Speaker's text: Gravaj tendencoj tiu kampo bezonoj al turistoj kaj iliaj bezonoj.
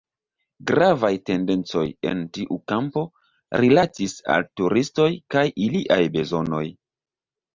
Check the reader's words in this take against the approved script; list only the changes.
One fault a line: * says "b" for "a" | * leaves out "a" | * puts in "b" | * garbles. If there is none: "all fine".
* puts in "en"
* says "rilatis" for "bezonoj"